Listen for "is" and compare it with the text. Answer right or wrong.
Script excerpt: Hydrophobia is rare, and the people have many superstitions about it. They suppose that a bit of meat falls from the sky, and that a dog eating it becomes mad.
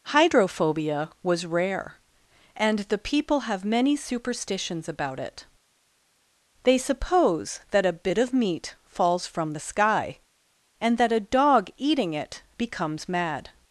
wrong